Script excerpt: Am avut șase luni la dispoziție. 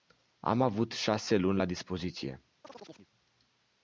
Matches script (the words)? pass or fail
pass